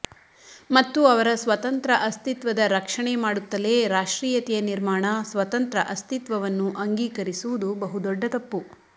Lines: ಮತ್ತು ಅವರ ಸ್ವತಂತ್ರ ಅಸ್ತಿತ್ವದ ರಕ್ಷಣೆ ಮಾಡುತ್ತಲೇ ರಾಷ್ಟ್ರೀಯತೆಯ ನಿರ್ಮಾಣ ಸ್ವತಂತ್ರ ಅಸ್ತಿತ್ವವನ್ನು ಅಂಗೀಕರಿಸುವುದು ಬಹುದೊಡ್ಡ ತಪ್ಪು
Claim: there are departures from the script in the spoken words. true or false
false